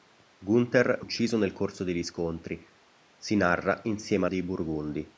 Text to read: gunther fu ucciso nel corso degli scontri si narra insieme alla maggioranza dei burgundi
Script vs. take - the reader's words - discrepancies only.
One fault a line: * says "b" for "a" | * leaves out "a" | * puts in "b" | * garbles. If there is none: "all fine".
* leaves out "fu"
* leaves out "alla maggioranza"